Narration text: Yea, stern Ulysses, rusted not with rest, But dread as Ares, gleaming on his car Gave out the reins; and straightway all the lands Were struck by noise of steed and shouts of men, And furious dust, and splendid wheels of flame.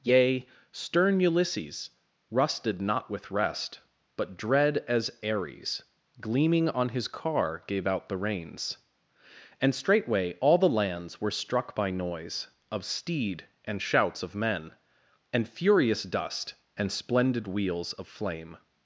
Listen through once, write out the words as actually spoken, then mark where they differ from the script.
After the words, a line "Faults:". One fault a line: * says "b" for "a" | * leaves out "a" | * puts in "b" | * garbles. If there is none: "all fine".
Yea, stern Ulysses, rusted not with rest, But dread as Ares, gleaming on his car Gave out the reins; and straightway all the lands Were struck by noise of steed and shouts of men, And furious dust, and splendid wheels of flame.
Faults:
all fine